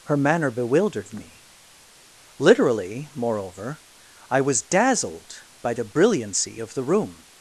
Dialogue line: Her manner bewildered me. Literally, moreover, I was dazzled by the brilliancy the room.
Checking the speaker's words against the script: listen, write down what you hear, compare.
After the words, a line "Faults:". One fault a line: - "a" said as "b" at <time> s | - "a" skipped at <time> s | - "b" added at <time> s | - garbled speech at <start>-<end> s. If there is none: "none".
Her manner bewildered me. Literally, moreover, I was dazzled by the brilliancy of the room.
Faults:
- "of" added at 6.6 s